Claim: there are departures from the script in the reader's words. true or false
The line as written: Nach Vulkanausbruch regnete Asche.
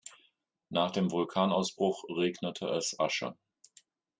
true